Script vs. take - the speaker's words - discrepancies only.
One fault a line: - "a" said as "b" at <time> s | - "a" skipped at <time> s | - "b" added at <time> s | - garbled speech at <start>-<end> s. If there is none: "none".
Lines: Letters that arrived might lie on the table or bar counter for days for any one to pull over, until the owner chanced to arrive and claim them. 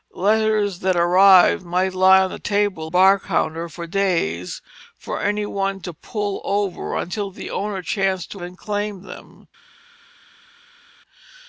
- "or" skipped at 2.9 s
- "arrive" skipped at 8.4 s